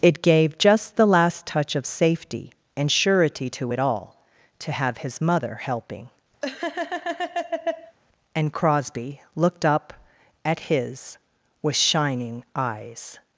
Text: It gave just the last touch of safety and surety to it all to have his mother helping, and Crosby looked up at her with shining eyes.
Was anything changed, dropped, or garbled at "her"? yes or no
yes